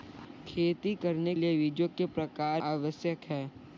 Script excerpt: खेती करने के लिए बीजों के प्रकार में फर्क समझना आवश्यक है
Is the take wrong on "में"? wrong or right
wrong